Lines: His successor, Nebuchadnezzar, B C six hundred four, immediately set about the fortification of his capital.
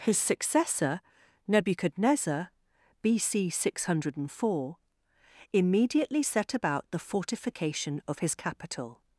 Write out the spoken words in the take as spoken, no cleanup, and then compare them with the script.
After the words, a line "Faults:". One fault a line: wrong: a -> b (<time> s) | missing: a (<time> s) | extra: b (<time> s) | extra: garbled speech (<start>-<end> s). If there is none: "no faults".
His successor, Nebuchadnezzar, B C six hundred four, immediately set about the fortification of his capital.
Faults:
no faults